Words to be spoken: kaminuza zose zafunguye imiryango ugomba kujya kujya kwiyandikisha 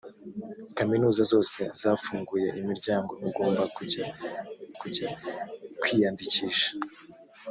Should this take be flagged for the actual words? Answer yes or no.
no